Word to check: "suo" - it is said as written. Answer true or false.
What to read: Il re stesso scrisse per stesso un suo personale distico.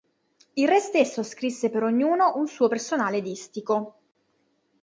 true